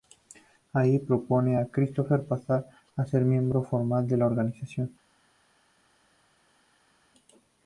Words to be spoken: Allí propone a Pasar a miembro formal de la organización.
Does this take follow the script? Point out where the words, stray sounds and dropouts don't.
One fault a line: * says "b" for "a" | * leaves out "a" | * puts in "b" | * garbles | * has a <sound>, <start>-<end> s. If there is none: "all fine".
* puts in "Christopher"
* puts in "ser"